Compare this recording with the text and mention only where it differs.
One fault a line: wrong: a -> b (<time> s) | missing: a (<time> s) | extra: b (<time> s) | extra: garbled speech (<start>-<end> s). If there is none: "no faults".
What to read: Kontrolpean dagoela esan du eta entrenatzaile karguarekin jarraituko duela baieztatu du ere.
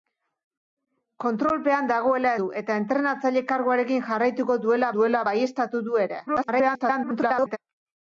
missing: esan (2.3 s)
extra: duela (5.0 s)
extra: garbled speech (6.3-7.6 s)